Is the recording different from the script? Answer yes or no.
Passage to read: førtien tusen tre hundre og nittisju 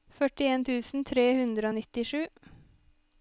no